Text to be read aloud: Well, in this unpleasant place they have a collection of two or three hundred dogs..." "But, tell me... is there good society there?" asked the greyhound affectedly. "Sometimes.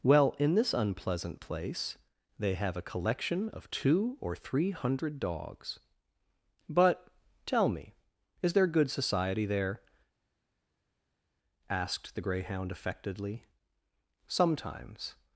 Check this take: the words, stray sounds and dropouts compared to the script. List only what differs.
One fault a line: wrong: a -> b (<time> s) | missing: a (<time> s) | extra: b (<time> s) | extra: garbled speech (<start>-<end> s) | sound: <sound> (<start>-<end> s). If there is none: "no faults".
no faults